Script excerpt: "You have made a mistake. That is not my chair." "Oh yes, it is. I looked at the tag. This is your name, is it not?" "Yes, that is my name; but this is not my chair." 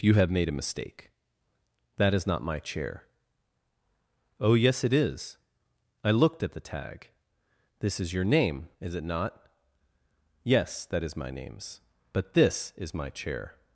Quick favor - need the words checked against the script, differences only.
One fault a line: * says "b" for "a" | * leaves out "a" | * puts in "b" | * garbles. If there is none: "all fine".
* says "names" for "name"
* leaves out "not"